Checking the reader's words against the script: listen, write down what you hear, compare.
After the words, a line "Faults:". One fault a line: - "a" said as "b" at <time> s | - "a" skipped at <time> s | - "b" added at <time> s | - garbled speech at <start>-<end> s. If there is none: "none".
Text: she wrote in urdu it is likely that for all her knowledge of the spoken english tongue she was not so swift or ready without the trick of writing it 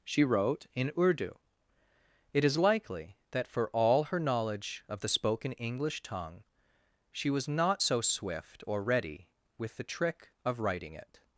she wrote in urdu it is likely that for all her knowledge of the spoken english tongue she was not so swift or ready with the trick of writing it
Faults:
- "without" said as "with" at 9.6 s